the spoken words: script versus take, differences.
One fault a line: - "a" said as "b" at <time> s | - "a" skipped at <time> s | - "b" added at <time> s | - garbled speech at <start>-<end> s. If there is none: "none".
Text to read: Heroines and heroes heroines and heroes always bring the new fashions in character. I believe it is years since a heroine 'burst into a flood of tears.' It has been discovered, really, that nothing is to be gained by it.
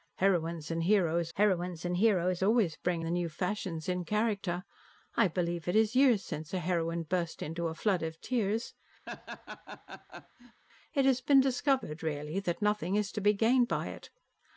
none